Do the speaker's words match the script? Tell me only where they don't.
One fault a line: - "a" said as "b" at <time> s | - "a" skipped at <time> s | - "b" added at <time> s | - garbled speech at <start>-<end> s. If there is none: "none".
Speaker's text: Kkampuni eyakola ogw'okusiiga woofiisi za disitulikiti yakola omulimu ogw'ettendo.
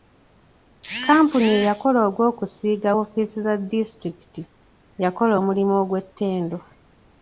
none